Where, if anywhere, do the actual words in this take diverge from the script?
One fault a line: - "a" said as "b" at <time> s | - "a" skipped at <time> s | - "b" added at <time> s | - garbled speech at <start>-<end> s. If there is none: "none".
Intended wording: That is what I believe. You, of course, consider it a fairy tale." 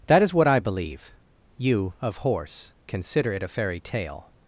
- "course" said as "horse" at 2.2 s